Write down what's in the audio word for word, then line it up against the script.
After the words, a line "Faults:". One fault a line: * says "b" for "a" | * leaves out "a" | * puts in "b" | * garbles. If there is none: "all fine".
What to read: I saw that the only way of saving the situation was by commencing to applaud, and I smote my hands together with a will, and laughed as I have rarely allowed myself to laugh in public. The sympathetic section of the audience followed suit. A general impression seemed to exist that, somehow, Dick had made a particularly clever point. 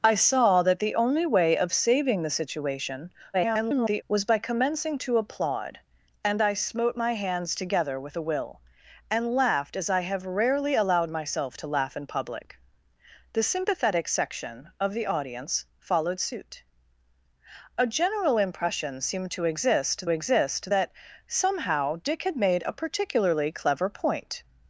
I saw that the only way of saving the situation [garbled] was by commencing to applaud, and I smote my hands together with a will, and laughed as I have rarely allowed myself to laugh in public. The sympathetic section of the audience followed suit. A general impression seemed to exist exist that, somehow, Dick had made a particularly clever point.
Faults:
* garbles
* puts in "exist"